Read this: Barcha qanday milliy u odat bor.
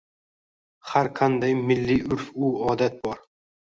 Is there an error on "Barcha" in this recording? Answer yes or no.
yes